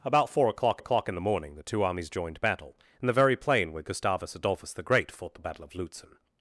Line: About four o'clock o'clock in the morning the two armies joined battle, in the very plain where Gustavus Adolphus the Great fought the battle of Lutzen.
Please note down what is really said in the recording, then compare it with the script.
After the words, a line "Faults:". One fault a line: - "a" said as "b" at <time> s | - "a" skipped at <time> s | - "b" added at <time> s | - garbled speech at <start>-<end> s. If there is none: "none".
About four o'clock o'clock in the morning the two armies joined battle, in the very plain where Gustavus Adolphus the Great fought the battle of Lutzen.
Faults:
none